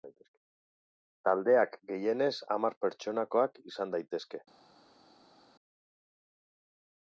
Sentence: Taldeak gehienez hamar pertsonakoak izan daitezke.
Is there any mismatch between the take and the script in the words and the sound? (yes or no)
no